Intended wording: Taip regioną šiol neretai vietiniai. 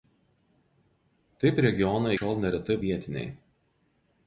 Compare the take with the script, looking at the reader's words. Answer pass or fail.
pass